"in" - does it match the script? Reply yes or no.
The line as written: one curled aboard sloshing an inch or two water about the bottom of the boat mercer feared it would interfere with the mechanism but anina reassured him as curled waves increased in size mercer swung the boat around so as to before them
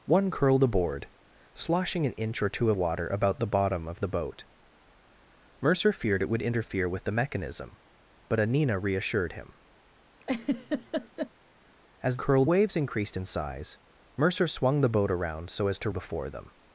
yes